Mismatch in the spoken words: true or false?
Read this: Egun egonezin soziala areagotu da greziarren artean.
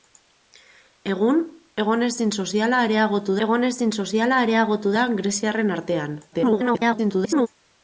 true